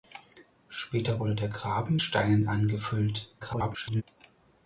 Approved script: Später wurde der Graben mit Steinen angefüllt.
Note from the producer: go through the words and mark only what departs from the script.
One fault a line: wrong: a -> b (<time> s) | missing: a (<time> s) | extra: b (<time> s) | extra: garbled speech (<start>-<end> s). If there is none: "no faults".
missing: mit (2.0 s)
extra: garbled speech (3.4-4.0 s)